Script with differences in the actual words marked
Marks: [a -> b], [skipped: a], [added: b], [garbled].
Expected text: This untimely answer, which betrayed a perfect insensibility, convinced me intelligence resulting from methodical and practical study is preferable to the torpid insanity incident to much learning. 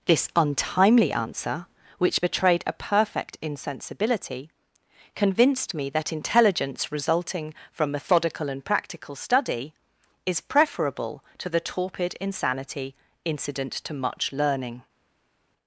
This untimely answer, which betrayed a perfect insensibility, convinced me [added: that] intelligence resulting from methodical and practical study is preferable to the torpid insanity incident to much learning.